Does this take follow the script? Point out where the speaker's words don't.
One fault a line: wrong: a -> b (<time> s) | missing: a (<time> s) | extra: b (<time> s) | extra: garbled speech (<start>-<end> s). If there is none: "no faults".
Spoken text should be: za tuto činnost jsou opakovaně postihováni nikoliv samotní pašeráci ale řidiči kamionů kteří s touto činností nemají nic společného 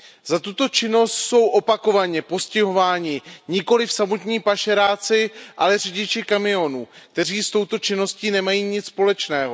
no faults